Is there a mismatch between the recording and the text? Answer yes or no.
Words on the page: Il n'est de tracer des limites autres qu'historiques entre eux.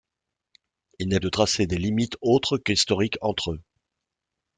no